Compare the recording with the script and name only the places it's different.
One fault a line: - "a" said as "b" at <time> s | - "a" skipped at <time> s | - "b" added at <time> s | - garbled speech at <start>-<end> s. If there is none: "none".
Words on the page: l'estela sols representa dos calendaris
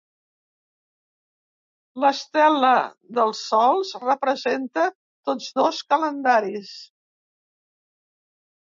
- "dels" added at 3.2 s
- "tots" added at 5.3 s